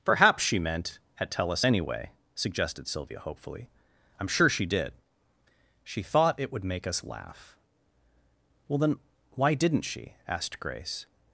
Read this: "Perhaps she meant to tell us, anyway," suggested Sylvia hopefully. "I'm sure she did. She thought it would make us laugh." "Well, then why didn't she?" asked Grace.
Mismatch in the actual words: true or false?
true